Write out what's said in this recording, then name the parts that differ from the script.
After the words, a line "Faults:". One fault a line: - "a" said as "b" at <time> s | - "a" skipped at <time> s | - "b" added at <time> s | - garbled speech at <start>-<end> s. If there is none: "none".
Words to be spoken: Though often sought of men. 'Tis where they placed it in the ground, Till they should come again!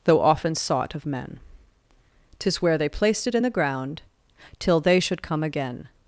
Though often sought of men. 'Tis where they placed it in the ground, Till they should come again!
Faults:
none